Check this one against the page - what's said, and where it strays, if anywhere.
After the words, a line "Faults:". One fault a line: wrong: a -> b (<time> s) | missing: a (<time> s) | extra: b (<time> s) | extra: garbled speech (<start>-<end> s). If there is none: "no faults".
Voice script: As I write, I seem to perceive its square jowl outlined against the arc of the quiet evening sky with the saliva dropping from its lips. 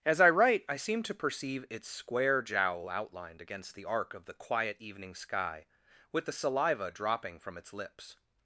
As I write, I seem to perceive its square jowl outlined against the arc of the quiet evening sky with the saliva dropping from its lips.
Faults:
no faults